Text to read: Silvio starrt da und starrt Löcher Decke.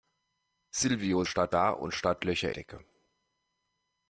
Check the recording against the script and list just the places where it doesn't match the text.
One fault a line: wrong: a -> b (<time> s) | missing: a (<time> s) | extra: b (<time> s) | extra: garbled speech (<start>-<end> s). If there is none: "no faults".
no faults